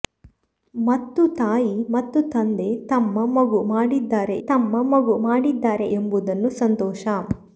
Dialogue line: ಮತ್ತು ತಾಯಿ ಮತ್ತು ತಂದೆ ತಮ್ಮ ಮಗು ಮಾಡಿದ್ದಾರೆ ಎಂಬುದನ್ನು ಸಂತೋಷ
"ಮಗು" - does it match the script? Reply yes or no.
yes